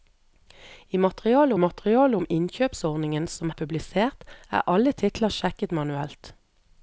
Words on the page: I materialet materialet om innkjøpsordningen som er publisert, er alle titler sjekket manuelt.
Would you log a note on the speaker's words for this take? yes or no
no